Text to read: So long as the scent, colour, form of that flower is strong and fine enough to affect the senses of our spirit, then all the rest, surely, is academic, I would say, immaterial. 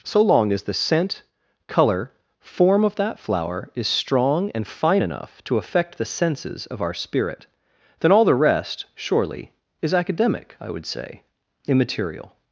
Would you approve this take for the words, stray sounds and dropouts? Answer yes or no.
yes